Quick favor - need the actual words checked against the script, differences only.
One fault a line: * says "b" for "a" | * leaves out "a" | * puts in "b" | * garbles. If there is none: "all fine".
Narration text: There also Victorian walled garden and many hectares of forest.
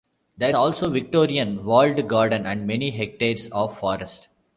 all fine